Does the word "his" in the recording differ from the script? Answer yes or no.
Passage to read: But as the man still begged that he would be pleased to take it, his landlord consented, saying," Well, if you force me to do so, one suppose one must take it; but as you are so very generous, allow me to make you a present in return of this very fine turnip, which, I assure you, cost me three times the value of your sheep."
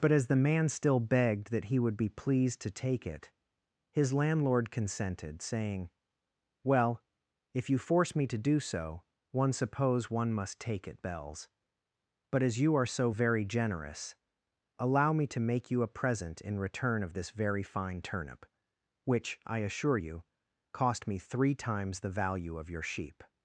no